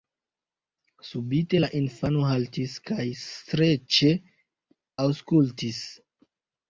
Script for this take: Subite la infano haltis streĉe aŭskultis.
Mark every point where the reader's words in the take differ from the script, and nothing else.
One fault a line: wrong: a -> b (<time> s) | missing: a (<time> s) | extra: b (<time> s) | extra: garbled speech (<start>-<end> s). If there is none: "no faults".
extra: kaj (2.9 s)